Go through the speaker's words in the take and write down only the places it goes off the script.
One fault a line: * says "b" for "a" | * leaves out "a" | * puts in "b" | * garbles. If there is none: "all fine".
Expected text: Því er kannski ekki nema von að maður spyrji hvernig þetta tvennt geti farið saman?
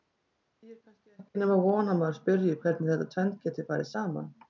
all fine